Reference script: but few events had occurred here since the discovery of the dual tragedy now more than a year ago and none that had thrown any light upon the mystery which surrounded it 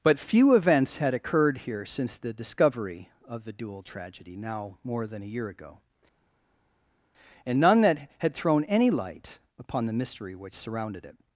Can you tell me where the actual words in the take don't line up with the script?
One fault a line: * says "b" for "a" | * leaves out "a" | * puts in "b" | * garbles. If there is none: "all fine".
all fine